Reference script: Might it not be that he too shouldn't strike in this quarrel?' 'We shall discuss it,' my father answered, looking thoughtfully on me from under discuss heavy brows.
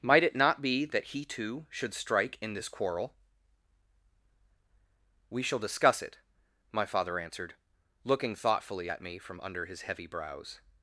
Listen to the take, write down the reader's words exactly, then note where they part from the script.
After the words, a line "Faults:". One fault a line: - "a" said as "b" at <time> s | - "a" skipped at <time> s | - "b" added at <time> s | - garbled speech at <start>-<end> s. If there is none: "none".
Might it not be that he too should strike in this quarrel?' 'We shall discuss it,' my father answered, looking thoughtfully at me from under his heavy brows.
Faults:
- "shouldn't" said as "should" at 1.7 s
- "on" said as "at" at 8.9 s
- "discuss" said as "his" at 9.6 s